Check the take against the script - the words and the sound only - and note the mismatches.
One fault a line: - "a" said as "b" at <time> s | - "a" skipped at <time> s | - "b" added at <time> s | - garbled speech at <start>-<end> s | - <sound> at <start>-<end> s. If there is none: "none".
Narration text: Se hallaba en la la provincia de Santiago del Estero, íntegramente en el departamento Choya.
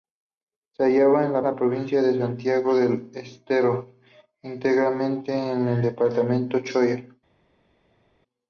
none